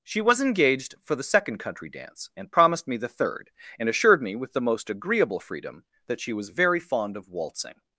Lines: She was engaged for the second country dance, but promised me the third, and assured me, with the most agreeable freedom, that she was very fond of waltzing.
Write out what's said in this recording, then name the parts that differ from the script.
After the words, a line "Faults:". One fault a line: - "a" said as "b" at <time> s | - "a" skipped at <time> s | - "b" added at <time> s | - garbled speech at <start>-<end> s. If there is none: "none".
She was engaged for the second country dance, and promised me the third, and assured me, with the most agreeable freedom, that she was very fond of waltzing.
Faults:
- "but" said as "and" at 2.4 s